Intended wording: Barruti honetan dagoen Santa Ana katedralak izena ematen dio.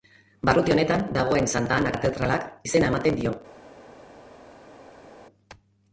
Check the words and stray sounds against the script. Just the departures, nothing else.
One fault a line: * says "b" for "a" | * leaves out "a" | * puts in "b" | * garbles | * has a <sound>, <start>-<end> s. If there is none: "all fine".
all fine